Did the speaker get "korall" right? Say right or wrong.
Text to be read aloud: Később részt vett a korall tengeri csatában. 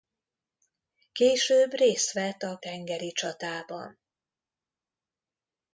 wrong